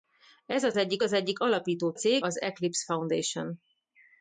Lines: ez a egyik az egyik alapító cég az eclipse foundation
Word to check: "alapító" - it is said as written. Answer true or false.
true